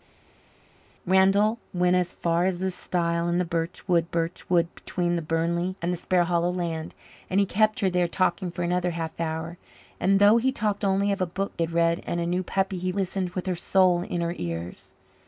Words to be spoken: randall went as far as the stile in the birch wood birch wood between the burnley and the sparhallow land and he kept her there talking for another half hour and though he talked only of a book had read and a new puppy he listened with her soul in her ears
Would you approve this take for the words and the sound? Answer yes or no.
yes